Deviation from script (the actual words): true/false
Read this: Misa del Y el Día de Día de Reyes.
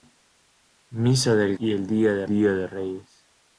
false